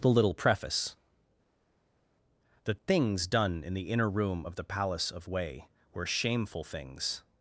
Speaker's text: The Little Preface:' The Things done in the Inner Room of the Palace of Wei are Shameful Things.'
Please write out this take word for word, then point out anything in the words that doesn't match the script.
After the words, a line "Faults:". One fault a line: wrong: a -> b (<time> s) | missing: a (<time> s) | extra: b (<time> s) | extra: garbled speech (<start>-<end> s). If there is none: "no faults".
The Little Preface:' The Things done in the Inner Room of the Palace of Wei were Shameful Things.'
Faults:
wrong: are -> were (5.9 s)